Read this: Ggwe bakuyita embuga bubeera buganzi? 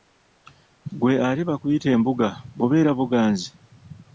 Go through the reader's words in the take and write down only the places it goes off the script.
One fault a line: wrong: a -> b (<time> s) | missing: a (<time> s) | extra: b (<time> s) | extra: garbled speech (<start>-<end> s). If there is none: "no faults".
extra: ate (1.3 s)